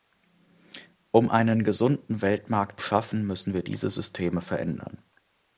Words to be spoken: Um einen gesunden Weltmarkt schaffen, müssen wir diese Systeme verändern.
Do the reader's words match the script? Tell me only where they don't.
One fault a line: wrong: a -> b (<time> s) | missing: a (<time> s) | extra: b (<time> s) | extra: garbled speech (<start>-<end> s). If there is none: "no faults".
no faults